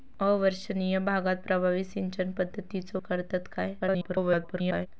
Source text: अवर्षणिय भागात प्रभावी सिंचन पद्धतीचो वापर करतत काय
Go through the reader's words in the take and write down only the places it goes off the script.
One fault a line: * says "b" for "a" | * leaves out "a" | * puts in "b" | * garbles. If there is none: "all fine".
* leaves out "वापर"
* garbles